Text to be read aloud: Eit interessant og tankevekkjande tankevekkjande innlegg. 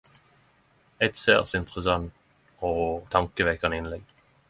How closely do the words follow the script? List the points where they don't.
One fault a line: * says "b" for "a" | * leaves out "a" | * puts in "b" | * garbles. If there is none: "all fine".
* puts in "særs"
* leaves out "tankevekkjande"